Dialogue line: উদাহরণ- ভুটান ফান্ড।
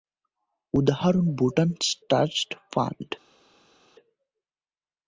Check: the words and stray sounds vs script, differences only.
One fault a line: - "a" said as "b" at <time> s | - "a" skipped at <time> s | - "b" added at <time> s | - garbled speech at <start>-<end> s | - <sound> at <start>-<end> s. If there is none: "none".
- "ট্রাস্ট" added at 2.1 s